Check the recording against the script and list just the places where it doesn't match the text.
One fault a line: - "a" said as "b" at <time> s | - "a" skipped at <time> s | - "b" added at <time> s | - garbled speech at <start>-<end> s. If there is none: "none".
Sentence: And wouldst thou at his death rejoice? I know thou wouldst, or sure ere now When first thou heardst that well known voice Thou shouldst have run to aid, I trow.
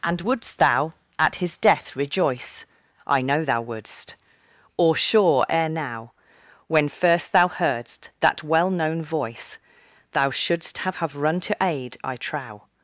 - "have" added at 10.9 s